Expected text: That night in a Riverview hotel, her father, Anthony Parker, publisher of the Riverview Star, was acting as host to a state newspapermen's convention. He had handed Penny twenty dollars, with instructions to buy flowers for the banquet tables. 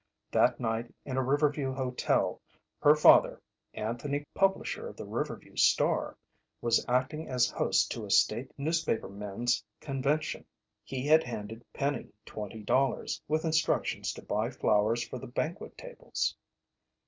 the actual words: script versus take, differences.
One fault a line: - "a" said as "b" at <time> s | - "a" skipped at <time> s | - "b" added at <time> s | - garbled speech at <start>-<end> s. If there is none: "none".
- "Parker" skipped at 4.2 s